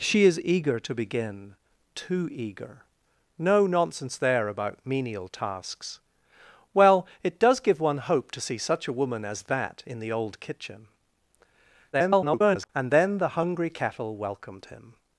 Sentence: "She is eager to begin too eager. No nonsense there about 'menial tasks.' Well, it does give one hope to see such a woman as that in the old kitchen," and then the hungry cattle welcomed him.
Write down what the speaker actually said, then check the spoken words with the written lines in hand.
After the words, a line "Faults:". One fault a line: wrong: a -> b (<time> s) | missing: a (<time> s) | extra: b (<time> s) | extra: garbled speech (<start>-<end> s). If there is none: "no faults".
"She is eager to begin too eager. No nonsense there about 'menial tasks.' Well, it does give one hope to see such a woman as that in the old kitchen," [garbled] and then the hungry cattle welcomed him.
Faults:
extra: garbled speech (11.9-12.7 s)